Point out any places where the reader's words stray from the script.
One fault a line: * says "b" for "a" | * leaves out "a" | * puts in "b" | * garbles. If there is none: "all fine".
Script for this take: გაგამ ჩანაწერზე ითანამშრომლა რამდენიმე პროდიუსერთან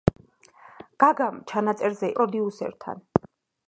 * leaves out "ითანამშრომლა რამდენიმე"